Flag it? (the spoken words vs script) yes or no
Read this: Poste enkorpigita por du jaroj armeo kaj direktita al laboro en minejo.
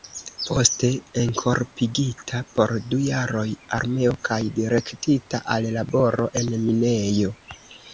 no